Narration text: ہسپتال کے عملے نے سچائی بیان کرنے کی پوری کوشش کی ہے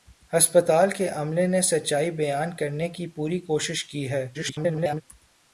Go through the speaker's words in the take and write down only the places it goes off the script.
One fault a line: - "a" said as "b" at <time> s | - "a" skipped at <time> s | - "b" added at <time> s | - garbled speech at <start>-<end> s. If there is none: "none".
- garbled speech at 4.3-5.0 s